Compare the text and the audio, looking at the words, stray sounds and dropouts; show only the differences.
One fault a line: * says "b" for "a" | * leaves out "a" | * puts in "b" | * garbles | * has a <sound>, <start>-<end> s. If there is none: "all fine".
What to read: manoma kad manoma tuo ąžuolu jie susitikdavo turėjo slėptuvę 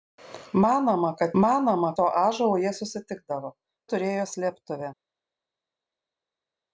all fine